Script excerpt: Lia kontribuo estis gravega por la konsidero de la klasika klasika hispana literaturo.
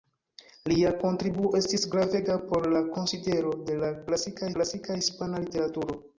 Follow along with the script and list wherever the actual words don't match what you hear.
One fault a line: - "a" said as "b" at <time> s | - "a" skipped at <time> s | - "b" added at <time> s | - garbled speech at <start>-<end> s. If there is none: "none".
none